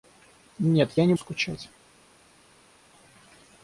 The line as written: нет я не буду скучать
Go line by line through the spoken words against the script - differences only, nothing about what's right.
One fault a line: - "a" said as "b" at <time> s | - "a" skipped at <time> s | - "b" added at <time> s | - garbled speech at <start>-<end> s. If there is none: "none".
- "буду" skipped at 1.1 s